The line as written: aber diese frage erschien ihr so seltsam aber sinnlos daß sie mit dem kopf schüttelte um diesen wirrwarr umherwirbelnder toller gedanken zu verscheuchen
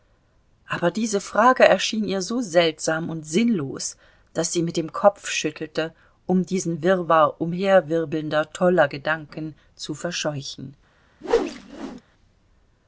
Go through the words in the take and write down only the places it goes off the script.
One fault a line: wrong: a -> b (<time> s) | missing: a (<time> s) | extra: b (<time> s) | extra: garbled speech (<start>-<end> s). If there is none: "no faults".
wrong: aber -> und (3.1 s)